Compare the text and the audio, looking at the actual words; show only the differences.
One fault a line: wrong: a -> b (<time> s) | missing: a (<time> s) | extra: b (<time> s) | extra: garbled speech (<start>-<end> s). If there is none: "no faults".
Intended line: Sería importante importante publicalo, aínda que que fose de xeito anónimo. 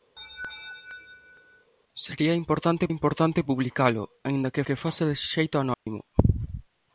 no faults